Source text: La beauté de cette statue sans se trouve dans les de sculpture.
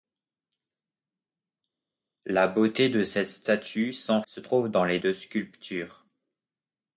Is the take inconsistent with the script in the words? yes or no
no